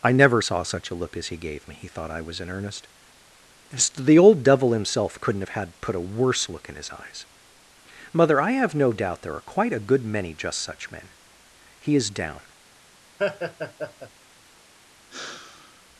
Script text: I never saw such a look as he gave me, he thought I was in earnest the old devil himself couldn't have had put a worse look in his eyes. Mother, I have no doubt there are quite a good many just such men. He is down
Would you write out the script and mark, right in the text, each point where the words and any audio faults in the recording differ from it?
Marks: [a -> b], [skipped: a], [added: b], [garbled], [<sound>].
I never saw such a look as he gave me, he thought I was in earnest the old devil himself couldn't have had put a worse look in his eyes. Mother, I have no doubt there are quite a good many just such men. He is down [laugh] [sigh]